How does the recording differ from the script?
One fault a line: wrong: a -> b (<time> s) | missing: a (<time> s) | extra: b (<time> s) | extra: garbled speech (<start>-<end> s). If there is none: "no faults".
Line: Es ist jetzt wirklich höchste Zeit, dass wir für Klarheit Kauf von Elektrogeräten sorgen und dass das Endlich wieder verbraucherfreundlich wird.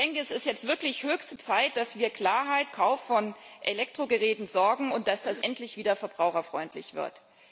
no faults